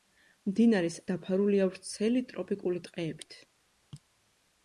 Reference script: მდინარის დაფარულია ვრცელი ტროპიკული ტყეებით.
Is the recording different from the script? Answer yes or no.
no